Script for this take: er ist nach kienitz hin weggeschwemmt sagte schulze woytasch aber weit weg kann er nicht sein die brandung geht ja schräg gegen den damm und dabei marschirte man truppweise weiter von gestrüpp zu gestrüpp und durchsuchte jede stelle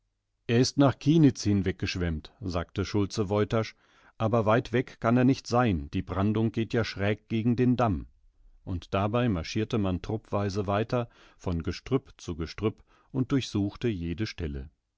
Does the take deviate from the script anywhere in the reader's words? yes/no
no